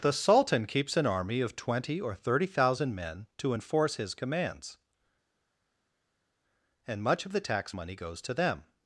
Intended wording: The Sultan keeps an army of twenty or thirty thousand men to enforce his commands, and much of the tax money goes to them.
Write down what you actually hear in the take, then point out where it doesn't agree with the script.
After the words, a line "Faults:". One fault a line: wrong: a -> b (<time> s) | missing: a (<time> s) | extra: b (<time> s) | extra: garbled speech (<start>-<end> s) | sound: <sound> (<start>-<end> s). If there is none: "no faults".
The Sultan keeps an army of twenty or thirty thousand men to enforce his commands, and much of the tax money goes to them.
Faults:
no faults